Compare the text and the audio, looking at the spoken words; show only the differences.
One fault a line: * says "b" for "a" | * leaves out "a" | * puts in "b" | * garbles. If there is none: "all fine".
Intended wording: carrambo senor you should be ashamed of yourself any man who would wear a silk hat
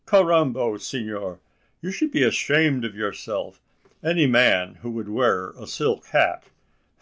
all fine